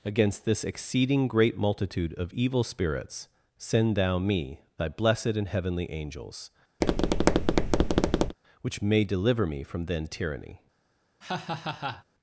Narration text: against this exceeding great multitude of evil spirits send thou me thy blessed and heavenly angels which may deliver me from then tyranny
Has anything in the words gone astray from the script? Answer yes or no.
no